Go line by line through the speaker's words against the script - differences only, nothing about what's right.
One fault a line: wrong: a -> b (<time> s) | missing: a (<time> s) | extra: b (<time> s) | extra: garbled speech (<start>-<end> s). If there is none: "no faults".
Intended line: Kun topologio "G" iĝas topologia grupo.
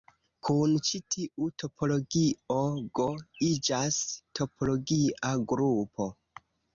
extra: ĉi tiu (0.8 s)